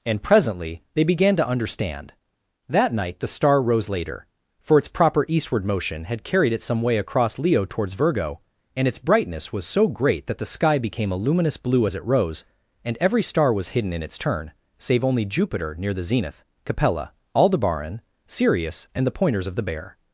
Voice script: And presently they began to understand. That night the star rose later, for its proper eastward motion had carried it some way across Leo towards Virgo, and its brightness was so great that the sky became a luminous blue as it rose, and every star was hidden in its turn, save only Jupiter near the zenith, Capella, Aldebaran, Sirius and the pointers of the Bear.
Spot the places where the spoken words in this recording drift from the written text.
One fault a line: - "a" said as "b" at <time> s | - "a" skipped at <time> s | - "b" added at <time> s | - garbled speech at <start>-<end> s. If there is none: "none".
none